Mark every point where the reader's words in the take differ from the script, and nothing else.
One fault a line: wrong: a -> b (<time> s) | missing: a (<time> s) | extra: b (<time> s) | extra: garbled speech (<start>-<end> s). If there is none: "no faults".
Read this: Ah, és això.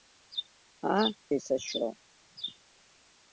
no faults